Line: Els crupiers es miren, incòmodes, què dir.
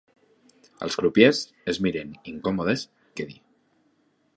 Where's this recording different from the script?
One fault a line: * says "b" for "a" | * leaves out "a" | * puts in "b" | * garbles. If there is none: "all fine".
all fine